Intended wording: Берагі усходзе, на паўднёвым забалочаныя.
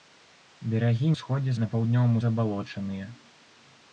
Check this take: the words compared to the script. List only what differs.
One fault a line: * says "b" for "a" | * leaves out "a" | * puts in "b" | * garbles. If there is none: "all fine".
all fine